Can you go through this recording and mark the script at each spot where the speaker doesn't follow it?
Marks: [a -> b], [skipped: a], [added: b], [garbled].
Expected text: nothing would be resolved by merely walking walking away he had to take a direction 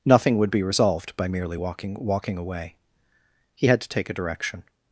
nothing would be resolved by merely walking walking away he had to take a direction